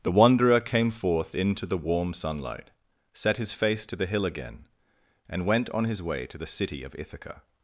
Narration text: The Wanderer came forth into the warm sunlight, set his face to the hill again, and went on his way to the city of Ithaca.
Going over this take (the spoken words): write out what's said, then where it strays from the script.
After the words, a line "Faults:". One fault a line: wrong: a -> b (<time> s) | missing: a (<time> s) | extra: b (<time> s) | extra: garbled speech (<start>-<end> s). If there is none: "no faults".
The Wanderer came forth into the warm sunlight, set his face to the hill again, and went on his way to the city of Ithaca.
Faults:
no faults